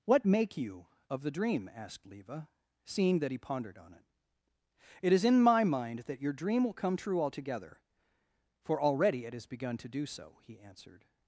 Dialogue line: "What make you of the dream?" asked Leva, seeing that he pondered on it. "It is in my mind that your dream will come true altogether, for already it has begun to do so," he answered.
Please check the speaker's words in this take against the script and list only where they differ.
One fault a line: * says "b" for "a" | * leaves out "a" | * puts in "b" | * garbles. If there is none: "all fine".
all fine